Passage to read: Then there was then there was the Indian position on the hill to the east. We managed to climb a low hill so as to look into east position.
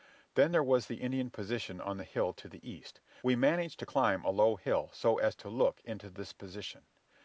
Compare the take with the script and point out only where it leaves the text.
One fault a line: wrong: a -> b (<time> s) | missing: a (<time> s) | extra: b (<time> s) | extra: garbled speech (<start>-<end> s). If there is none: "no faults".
missing: then there was (0.9 s)
wrong: east -> this (6.1 s)